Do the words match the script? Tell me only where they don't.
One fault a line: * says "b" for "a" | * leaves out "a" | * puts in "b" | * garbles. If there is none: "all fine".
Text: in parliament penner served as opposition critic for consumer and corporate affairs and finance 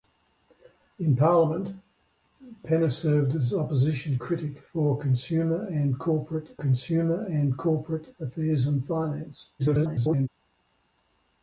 * puts in "consumer and corporate"
* garbles